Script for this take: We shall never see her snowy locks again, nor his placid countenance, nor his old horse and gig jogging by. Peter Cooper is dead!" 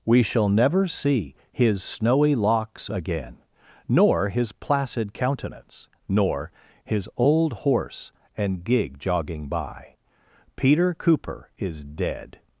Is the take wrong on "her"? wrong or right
wrong